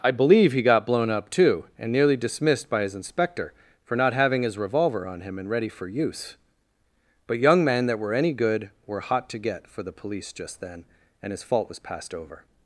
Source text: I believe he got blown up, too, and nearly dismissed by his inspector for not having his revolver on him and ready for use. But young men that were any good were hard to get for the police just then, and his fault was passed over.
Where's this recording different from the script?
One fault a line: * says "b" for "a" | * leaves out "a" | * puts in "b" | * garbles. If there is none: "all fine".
* says "hot" for "hard"